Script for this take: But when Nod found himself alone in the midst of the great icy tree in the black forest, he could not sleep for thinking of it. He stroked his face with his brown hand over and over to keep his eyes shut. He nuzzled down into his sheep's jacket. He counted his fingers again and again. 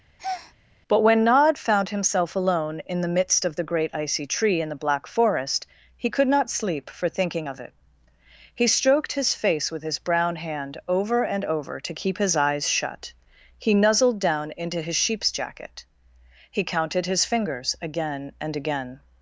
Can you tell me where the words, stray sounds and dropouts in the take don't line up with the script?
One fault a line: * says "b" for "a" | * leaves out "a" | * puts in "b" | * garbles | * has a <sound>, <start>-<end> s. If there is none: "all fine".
* has a breath, 0.2-0.5 s